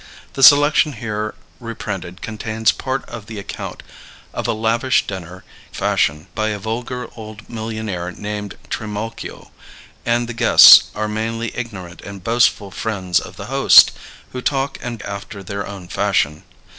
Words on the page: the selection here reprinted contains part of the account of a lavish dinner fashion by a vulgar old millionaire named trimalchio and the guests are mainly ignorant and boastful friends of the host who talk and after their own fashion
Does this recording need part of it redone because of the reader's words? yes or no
no